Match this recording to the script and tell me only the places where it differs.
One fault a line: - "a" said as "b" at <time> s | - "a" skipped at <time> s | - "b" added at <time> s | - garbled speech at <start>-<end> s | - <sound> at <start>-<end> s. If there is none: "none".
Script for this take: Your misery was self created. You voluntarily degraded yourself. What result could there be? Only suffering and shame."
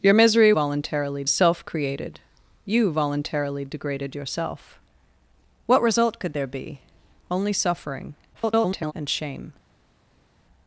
- "was" said as "voluntarily" at 0.5 s
- garbled speech at 8.3-8.9 s